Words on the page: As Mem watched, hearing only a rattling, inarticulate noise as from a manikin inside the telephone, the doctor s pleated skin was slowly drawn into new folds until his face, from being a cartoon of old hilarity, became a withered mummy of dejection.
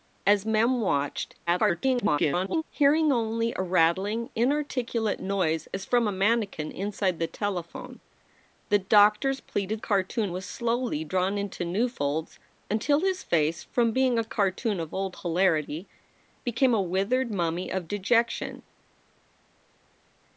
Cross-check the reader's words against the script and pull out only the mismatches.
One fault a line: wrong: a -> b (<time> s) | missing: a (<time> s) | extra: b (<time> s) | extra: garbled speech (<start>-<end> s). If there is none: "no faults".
extra: garbled speech (1.5-2.6 s)
wrong: skin -> cartoon (9.8 s)